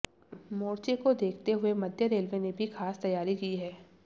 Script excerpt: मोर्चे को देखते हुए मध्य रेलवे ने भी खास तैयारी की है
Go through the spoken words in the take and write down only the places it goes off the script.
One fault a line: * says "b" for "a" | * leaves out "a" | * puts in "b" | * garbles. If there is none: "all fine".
all fine